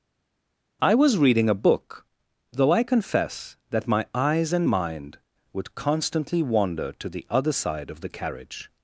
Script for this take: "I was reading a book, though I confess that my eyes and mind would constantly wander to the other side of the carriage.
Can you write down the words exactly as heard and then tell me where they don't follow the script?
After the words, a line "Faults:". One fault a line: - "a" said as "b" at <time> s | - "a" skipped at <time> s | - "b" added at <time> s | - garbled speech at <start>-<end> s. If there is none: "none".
"I was reading a book, though I confess that my eyes and mind would constantly wander to the other side of the carriage.
Faults:
none